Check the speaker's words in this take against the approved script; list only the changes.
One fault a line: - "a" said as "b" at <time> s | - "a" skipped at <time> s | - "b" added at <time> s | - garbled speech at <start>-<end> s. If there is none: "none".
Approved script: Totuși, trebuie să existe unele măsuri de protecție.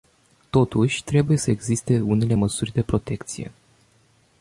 none